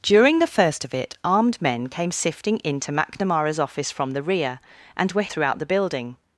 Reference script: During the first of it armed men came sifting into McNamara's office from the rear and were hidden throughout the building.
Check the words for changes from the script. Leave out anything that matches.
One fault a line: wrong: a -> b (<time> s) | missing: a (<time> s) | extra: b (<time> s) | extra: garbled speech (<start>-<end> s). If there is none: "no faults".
missing: hidden (5.3 s)